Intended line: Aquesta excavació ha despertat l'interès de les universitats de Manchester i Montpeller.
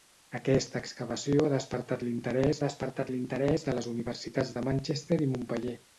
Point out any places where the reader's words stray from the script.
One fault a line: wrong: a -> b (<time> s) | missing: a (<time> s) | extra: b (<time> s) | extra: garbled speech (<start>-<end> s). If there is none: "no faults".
extra: despertat l'interès (2.6 s)